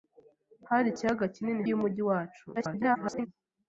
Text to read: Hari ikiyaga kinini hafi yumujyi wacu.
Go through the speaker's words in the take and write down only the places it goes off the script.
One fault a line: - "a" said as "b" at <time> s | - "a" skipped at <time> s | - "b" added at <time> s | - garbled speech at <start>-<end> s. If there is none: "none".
- "hafi" skipped at 1.6 s
- garbled speech at 2.6-3.3 s